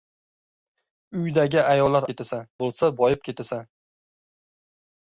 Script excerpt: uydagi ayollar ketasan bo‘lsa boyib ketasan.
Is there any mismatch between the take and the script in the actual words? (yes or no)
no